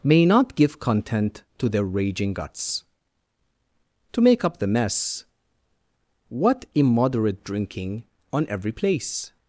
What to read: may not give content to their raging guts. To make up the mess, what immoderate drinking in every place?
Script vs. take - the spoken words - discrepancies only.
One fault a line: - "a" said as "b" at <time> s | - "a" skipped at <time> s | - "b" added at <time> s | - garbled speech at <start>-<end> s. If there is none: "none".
- "in" said as "on" at 8.3 s